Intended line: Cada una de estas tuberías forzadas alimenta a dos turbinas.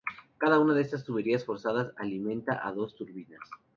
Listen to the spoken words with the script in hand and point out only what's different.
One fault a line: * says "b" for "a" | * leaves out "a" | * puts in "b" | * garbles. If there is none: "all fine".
all fine